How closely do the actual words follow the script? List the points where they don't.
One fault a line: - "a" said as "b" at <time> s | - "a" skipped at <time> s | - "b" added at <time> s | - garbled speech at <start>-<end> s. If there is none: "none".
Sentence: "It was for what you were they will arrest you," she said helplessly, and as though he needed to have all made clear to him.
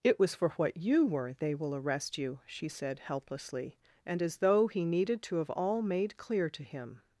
none